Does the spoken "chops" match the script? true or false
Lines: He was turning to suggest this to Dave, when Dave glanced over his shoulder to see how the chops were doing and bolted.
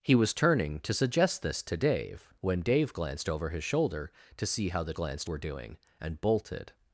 false